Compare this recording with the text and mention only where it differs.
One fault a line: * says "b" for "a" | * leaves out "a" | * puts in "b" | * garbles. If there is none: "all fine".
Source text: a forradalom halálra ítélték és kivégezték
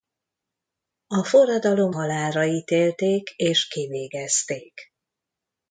all fine